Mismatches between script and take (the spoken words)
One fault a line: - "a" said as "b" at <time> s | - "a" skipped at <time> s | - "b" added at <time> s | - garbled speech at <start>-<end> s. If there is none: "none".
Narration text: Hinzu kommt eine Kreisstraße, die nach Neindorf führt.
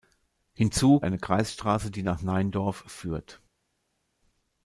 - "kommt" skipped at 1.0 s